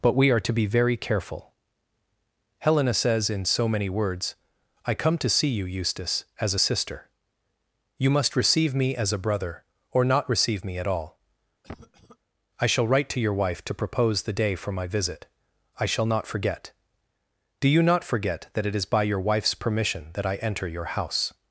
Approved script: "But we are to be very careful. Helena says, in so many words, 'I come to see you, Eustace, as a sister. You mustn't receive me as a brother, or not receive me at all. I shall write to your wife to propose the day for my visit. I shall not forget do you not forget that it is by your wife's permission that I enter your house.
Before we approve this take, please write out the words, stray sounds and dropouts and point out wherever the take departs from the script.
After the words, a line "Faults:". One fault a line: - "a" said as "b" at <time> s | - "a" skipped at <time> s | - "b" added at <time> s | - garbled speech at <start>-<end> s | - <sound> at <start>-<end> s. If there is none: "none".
"But we are to be very careful. Helena says, in so many words, 'I come to see you, Eustace, as a sister. You must receive me as a brother, or not receive me at all. I shall write to your wife to propose the day for my visit. I shall not forget do you not forget that it is by your wife's permission that I enter your house.
Faults:
- "mustn't" said as "must" at 8.1 s
- cough at 11.6-12.2 s